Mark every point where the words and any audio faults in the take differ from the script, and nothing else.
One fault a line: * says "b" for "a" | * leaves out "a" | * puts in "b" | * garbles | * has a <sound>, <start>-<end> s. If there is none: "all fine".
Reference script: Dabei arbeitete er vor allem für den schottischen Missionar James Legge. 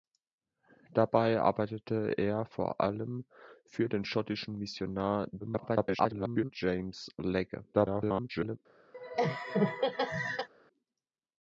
* garbles
* garbles
* has a laugh, 8.9-10.5 s